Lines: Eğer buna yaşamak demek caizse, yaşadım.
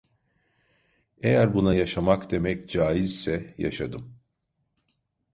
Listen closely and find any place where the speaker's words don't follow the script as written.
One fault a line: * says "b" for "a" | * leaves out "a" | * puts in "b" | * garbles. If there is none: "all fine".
all fine